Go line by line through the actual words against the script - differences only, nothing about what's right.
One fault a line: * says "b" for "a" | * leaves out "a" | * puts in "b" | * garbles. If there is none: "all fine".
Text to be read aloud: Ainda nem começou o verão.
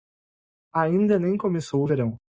all fine